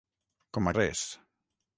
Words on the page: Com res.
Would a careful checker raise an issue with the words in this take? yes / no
no